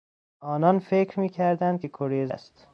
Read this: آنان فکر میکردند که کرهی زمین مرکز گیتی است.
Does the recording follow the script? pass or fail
fail